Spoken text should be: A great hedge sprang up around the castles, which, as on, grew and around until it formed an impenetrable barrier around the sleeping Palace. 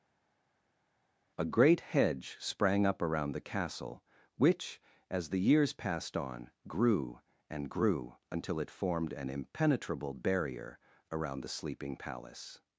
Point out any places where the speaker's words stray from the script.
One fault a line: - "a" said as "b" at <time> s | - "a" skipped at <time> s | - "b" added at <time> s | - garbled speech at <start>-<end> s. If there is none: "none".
- "castles" said as "castle" at 3.4 s
- "the years passed" added at 5.3 s
- "around" said as "grew" at 7.7 s